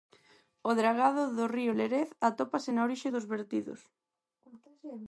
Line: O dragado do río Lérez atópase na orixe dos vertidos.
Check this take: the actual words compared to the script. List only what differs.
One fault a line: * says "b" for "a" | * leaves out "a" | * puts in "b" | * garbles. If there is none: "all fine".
all fine